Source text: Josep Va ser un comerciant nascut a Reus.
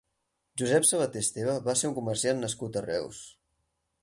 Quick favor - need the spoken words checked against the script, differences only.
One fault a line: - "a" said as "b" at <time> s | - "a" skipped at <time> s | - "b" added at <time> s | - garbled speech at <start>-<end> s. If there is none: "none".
- "Sabater Esteve" added at 0.9 s